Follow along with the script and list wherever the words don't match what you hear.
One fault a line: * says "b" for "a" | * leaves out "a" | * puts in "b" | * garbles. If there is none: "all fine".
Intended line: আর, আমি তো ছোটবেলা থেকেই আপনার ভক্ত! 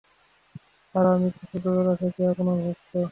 all fine